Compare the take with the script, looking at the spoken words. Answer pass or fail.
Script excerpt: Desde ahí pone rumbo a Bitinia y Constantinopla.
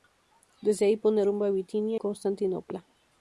fail